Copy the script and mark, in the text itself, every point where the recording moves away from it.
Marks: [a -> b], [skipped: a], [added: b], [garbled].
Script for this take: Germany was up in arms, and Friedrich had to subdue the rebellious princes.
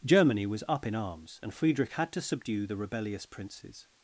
Germany was up in arms, and Friedrich had to subdue the rebellious princes.